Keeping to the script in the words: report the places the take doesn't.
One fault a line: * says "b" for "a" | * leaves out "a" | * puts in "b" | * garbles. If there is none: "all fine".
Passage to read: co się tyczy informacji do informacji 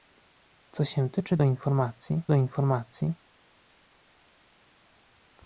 all fine